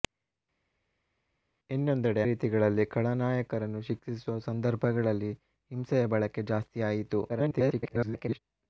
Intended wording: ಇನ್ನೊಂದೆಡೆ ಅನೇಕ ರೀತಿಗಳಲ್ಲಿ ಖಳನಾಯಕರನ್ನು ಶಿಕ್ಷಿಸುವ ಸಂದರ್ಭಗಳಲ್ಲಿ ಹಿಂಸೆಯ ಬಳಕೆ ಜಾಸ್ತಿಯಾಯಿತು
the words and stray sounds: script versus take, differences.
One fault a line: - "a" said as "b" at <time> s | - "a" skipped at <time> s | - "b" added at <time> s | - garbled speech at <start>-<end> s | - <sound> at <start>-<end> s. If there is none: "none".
- "ಅನೇಕ" skipped at 2.2 s
- garbled speech at 7.3-8.4 s